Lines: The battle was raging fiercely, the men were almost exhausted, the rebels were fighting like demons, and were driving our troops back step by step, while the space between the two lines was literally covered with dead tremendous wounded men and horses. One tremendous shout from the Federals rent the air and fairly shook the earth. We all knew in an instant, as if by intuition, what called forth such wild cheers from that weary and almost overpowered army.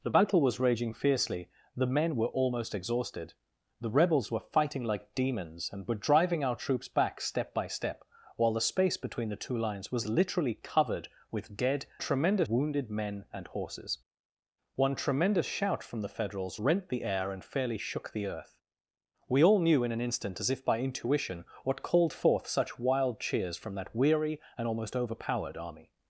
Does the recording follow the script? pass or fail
pass